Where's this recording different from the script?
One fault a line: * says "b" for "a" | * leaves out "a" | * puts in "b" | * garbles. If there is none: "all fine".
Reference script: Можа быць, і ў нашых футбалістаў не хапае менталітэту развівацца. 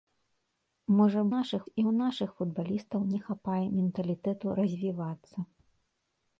* says "нашых" for "быць"